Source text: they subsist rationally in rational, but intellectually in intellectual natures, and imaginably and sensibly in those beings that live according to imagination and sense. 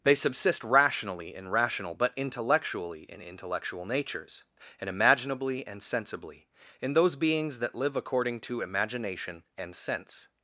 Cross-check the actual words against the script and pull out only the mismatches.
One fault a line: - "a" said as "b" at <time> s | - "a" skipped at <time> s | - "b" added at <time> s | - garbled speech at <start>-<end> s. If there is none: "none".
none